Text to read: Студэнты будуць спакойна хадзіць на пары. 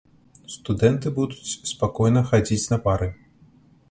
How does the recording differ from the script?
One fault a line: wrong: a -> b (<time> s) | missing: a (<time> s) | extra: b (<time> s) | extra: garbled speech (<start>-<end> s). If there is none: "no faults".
no faults